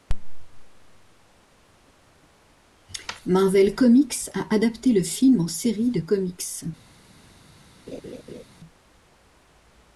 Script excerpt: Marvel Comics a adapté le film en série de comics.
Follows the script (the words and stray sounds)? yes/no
no